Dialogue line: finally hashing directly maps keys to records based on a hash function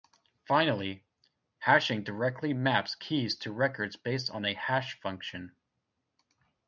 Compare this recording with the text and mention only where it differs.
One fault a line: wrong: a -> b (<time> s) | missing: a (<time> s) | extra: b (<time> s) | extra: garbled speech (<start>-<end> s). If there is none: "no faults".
no faults